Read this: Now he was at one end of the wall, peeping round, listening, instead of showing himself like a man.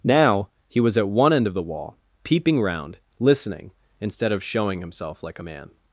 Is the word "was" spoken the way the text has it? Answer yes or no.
yes